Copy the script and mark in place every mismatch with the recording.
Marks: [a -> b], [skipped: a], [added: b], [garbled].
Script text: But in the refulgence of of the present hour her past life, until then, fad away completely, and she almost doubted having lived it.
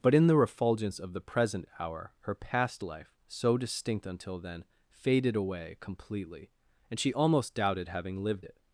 But in the refulgence of [skipped: of] the present hour her past life, [added: so distinct] until then, [fad -> faded] away completely, and she almost doubted having lived it.